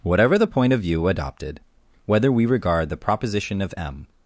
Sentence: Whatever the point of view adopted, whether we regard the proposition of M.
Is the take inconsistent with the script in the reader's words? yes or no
no